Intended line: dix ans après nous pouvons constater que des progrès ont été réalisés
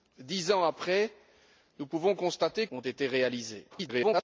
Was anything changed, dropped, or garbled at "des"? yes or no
yes